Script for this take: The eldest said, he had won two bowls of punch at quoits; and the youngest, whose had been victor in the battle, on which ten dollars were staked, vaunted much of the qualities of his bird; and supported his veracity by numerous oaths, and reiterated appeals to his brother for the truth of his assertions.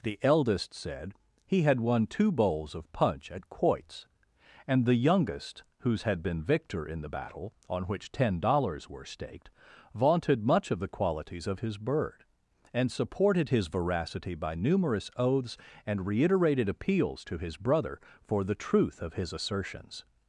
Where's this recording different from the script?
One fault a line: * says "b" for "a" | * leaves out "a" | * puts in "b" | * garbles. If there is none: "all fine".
all fine